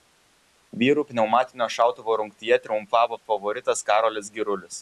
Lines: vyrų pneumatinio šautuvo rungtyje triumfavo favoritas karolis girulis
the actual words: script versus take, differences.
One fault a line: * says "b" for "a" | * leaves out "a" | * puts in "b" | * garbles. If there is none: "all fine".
all fine